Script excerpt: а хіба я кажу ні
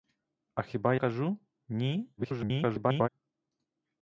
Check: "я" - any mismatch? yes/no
yes